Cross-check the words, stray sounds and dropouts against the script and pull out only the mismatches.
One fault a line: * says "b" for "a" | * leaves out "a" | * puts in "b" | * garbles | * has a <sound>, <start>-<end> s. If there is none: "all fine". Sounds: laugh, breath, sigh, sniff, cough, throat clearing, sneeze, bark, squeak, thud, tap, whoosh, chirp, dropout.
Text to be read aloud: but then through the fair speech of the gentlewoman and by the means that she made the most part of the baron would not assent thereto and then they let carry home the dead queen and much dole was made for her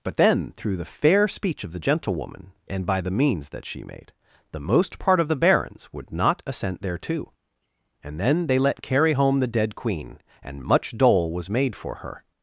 * says "barons" for "baron"